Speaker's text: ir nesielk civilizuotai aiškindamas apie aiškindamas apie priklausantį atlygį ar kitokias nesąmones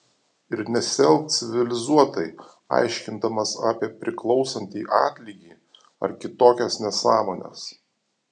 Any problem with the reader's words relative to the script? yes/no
yes